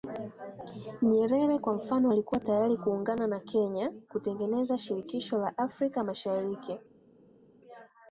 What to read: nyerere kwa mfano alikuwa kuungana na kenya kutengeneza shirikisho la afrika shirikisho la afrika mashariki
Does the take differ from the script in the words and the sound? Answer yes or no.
yes